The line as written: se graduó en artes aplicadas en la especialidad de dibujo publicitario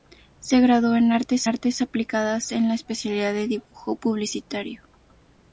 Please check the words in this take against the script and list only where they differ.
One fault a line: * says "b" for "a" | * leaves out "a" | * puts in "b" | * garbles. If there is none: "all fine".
* puts in "artes"